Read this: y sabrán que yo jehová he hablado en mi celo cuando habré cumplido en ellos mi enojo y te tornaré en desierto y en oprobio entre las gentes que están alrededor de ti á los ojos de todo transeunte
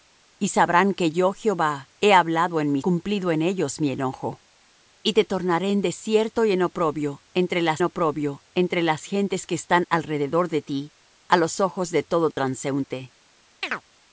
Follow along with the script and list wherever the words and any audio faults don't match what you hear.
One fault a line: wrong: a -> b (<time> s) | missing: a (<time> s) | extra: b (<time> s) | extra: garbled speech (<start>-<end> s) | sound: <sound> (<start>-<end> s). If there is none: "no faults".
missing: celo cuando habré (2.8 s)
extra: oprobio entre las (7.8 s)
sound: chirp (13.6-13.8 s)